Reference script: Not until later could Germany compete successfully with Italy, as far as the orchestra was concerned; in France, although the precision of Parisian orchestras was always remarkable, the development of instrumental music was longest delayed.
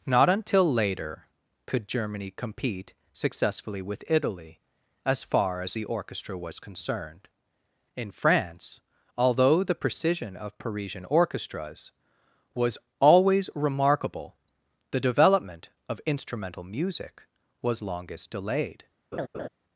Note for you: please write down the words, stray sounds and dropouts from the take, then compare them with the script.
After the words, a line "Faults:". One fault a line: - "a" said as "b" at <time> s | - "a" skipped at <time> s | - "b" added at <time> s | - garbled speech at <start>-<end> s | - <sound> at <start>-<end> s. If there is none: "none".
Not until later could Germany compete successfully with Italy, as far as the orchestra was concerned; in France, although the precision of Parisian orchestras was always remarkable, the development of instrumental music was longest delayed.
Faults:
- laugh at 19.1-19.5 s